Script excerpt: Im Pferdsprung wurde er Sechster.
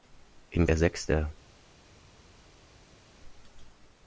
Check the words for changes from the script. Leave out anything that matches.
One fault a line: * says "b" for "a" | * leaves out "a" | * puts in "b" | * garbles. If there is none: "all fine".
* leaves out "Pferdsprung wurde"